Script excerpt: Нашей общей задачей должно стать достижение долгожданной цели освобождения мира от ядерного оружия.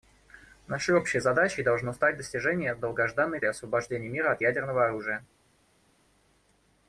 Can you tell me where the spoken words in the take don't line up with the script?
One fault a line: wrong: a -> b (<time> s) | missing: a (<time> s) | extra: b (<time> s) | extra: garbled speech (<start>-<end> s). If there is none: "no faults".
missing: цели (3.4 s)